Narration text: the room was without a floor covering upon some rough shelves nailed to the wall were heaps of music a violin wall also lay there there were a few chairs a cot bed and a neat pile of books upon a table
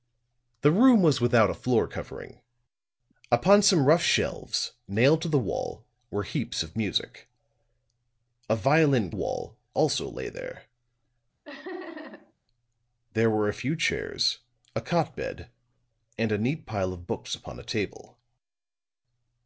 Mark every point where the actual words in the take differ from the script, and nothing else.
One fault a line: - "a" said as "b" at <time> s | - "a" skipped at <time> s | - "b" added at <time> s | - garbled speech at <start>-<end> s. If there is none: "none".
none